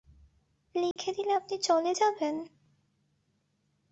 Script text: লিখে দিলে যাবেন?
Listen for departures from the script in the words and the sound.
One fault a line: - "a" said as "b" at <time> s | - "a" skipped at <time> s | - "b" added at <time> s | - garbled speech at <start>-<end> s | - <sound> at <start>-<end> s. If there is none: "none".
- dropout at 0.9-1.0 s
- "আপনি চলে" added at 1.3 s